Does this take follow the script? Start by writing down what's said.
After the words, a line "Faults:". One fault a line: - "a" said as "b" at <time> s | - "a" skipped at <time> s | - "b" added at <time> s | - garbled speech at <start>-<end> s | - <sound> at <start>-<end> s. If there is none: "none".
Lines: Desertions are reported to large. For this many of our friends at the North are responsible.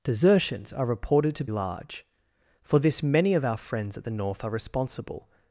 Desertions are reported to large. For this many of our friends at the North are responsible.
Faults:
none